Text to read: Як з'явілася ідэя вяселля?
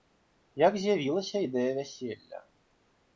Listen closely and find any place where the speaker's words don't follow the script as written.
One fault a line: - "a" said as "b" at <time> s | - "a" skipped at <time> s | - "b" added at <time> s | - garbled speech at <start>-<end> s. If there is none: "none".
none